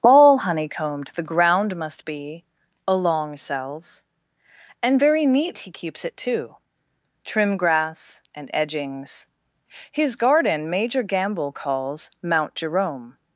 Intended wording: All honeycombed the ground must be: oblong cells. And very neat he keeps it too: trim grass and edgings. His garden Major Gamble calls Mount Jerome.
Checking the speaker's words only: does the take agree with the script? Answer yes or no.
no